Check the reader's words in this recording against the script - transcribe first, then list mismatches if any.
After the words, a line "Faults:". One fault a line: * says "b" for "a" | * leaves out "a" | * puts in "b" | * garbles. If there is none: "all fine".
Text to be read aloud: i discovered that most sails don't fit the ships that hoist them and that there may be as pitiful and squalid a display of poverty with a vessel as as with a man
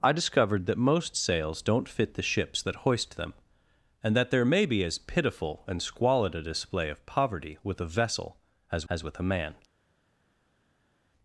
i discovered that most sails don't fit the ships that hoist them and that there may be as pitiful and squalid a display of poverty with a vessel as as with a man
Faults:
all fine